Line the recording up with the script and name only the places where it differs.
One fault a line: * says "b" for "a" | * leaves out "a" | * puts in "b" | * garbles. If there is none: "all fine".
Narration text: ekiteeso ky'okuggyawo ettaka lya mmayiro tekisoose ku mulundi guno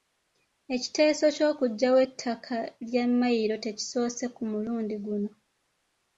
all fine